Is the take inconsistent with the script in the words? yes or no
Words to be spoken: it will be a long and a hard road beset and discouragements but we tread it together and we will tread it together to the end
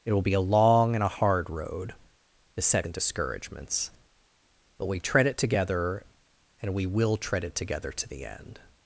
no